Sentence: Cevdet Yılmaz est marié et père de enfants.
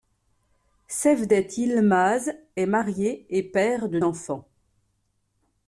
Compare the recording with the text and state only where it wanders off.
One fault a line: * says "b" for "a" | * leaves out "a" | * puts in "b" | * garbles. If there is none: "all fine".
all fine